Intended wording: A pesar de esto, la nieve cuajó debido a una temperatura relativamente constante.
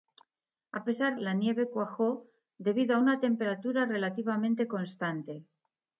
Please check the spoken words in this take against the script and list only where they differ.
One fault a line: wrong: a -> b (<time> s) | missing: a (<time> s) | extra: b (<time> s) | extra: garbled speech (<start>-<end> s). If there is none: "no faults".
missing: de esto (1.2 s)